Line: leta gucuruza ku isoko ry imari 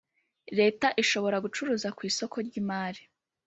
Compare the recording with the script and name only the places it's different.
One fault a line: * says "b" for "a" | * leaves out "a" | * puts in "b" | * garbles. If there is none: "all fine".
* puts in "ishobora"